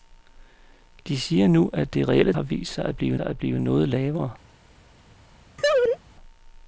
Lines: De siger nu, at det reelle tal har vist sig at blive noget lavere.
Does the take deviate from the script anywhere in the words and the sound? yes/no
yes